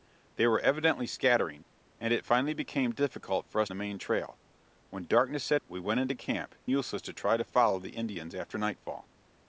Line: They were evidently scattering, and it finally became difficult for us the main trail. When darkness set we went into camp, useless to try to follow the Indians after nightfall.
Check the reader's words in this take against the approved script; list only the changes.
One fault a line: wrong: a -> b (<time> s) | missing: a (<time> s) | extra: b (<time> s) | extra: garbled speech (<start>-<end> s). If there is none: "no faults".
no faults